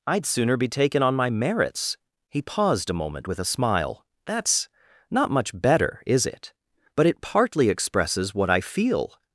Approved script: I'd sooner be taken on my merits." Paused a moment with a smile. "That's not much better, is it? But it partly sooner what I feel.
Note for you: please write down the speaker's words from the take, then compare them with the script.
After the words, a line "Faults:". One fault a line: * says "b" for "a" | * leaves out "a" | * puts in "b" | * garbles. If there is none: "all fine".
I'd sooner be taken on my merits." He paused a moment with a smile. "That's not much better, is it? But it partly expresses what I feel.
Faults:
* puts in "He"
* says "expresses" for "sooner"